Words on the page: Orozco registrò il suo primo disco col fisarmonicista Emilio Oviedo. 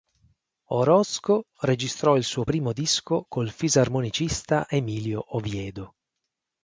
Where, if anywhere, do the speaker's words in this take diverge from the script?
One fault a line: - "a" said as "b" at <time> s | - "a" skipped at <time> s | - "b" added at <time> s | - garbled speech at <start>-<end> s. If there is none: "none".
none